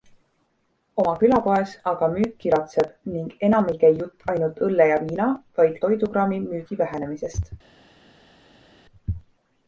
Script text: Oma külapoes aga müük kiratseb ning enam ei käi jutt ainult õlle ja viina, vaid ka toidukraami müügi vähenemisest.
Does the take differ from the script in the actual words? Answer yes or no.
yes